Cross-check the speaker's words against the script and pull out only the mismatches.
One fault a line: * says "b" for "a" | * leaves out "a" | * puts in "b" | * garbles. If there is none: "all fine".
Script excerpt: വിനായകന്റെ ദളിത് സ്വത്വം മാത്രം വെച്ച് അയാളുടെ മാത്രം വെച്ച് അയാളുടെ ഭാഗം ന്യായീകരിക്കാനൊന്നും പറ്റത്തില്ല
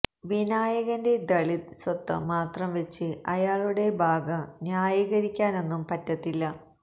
* leaves out "മാത്രം വെച്ച് അയാളുടെ"